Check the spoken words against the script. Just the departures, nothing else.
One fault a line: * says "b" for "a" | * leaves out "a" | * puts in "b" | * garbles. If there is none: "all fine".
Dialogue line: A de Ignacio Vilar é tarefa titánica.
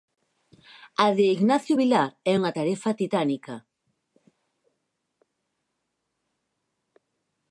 * puts in "unha"